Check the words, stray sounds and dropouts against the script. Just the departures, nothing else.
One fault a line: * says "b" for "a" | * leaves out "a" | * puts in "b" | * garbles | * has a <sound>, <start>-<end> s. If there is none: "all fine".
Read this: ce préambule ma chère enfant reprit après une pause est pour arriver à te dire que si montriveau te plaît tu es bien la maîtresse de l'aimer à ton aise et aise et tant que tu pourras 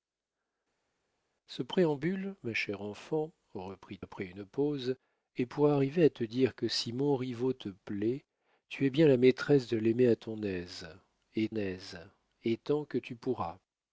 all fine